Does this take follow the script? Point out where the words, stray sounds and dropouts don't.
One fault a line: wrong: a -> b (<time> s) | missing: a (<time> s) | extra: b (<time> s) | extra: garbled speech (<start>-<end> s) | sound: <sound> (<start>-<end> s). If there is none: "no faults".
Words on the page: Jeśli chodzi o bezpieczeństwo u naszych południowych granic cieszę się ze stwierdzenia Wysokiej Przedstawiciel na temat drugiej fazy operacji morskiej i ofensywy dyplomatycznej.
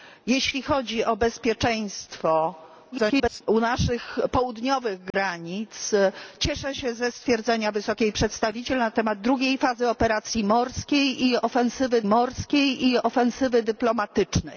extra: garbled speech (2.9-3.4 s)
sound: dropout (5.1-5.1 s)
extra: morskiej i ofensywy (12.1 s)